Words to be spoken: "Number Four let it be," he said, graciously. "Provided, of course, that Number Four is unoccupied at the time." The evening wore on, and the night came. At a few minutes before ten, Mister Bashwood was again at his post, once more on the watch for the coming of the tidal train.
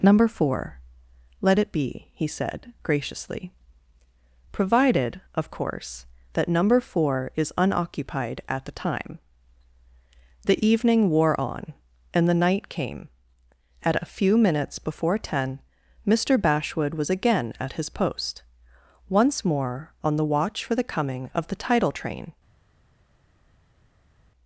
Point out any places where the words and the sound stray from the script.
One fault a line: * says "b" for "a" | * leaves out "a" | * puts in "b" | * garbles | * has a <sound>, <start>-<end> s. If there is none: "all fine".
all fine